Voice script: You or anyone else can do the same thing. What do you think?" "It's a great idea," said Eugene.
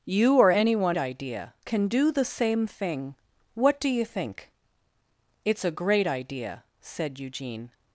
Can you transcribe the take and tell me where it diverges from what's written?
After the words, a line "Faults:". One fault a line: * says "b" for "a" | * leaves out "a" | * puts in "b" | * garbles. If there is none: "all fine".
You or anyone idea can do the same thing. What do you think?" "It's a great idea," said Eugene.
Faults:
* says "idea" for "else"